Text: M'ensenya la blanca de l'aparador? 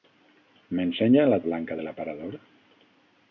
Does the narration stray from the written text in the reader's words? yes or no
no